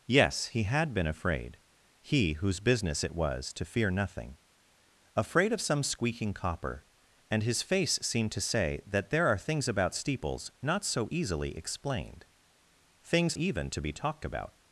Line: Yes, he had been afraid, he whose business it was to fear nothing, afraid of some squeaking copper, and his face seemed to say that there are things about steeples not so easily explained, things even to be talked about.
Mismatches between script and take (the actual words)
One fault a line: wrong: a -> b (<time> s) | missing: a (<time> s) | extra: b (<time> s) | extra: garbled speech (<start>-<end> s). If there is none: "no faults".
no faults